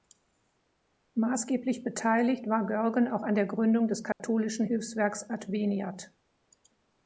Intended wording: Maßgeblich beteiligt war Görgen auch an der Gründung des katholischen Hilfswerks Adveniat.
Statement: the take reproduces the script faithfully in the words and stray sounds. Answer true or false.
false